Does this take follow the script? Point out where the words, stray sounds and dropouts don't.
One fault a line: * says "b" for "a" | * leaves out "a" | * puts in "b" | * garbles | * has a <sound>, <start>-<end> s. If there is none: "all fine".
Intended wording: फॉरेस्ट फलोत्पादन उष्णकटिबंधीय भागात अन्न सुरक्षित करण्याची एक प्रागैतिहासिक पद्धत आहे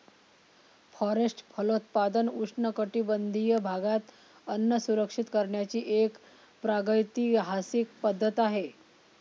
all fine